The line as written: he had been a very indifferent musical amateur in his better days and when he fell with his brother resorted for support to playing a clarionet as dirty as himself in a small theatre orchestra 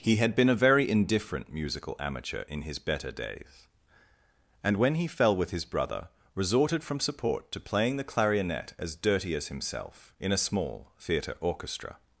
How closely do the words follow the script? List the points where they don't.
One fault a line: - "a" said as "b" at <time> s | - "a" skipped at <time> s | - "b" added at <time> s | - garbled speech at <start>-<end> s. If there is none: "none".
- "for" said as "from" at 6.8 s
- "a" said as "the" at 8.0 s